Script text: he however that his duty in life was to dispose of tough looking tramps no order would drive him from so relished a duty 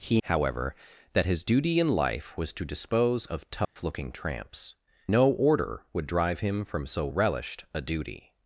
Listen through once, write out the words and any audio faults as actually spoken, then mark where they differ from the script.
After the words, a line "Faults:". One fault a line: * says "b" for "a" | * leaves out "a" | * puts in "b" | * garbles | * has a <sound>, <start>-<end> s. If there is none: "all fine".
he however that his duty in life was to dispose of tough looking tramps no order would drive him from so relished a duty
Faults:
* has a dropout, 3.6-3.8 s